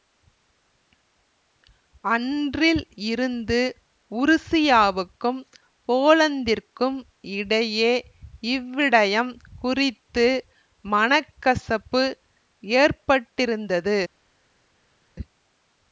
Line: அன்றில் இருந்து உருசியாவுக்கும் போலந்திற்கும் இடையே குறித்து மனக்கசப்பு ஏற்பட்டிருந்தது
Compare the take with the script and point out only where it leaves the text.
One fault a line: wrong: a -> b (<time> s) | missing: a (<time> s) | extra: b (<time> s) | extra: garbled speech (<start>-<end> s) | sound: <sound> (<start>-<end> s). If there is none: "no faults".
extra: இவ்விடயம் (8.5 s)